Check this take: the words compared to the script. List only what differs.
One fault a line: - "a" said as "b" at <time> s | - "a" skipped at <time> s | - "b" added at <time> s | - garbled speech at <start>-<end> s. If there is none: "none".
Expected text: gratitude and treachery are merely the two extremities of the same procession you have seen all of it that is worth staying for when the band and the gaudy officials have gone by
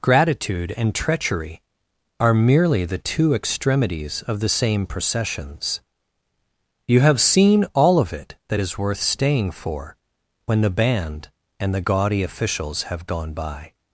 - "procession" said as "processions" at 4.9 s